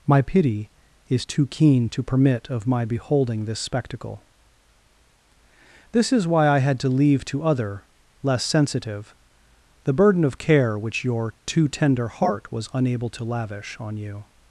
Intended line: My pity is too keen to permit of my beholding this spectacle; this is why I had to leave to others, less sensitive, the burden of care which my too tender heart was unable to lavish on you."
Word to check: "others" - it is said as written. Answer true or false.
false